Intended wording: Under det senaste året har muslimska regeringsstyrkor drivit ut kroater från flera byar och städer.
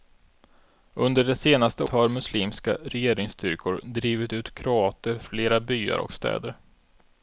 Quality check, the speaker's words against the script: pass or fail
fail